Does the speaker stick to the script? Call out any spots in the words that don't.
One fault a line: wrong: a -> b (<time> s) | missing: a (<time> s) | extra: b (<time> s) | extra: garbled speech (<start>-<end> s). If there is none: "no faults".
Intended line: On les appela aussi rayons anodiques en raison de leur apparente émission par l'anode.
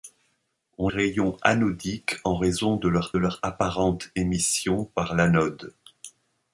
missing: les appela aussi (0.9 s)
extra: leur (3.2 s)